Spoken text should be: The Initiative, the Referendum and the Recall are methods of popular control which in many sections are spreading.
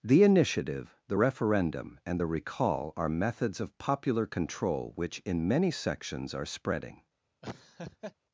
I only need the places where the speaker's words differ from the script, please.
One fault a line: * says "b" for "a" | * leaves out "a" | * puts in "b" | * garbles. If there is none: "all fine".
all fine